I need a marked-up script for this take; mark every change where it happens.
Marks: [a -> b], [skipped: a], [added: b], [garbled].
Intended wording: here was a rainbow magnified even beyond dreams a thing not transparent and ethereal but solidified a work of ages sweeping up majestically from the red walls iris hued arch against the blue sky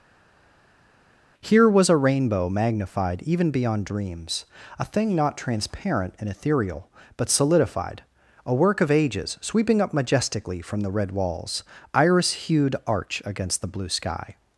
here was a rainbow magnified even beyond dreams a thing not transparent and ethereal but solidified a work of ages sweeping up majestically from the red walls iris hued arch against the blue sky